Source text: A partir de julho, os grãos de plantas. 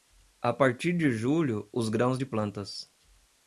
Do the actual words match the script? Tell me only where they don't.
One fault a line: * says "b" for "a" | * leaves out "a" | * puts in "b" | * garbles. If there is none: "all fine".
all fine